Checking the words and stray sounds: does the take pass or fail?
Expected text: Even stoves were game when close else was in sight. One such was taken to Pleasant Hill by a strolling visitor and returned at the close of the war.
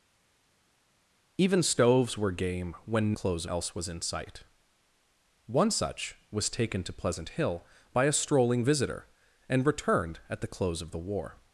pass